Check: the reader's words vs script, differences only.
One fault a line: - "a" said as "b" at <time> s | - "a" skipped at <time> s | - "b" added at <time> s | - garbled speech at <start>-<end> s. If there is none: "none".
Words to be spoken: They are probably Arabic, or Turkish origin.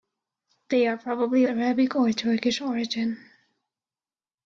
none